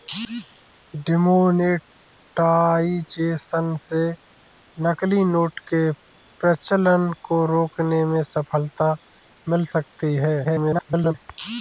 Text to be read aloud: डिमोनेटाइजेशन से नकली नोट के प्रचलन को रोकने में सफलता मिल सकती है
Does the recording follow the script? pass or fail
fail